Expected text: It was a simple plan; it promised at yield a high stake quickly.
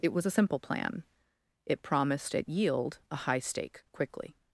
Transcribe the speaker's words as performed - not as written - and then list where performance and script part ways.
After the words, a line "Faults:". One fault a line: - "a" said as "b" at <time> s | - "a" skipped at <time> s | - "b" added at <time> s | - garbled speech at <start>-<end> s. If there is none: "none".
It was a simple plan; it promised at yield a high stake quickly.
Faults:
none